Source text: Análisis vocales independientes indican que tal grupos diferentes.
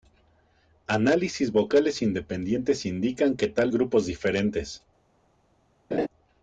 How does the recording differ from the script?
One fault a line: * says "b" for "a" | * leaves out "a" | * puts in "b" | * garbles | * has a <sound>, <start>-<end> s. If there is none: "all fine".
* has a laugh, 5.9-6.1 s